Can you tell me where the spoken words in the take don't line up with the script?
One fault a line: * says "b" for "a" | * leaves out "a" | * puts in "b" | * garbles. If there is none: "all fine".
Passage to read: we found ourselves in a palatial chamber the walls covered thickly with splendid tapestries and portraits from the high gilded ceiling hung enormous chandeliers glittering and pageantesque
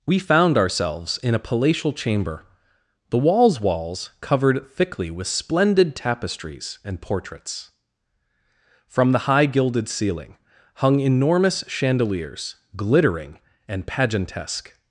* puts in "walls"